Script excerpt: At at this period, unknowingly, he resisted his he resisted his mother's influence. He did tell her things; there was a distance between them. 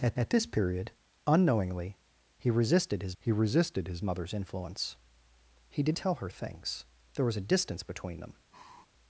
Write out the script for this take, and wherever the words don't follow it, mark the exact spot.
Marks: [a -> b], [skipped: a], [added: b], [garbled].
At at this period, unknowingly, he resisted his he resisted his mother's influence. He did tell her things; there was a distance between them.